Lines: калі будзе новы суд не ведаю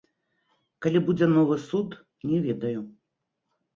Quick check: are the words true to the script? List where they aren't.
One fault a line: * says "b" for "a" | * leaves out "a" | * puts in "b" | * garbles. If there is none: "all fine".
all fine